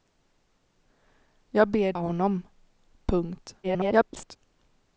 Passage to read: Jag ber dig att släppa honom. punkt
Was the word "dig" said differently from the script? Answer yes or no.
yes